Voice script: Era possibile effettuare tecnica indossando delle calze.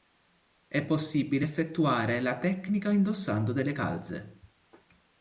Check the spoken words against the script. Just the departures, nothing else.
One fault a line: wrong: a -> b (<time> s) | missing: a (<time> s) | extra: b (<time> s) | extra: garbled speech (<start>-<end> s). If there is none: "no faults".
wrong: Era -> È (0.7 s)
extra: la (2.2 s)